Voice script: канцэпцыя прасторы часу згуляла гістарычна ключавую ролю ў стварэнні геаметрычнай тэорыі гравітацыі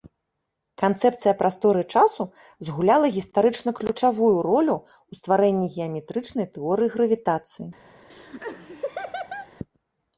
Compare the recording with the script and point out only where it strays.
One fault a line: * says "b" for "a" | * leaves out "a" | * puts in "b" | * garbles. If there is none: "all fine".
all fine